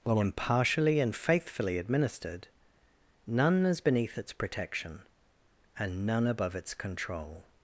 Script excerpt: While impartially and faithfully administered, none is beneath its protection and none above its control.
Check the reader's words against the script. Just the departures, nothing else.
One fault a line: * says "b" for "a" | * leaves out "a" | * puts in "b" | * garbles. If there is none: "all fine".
all fine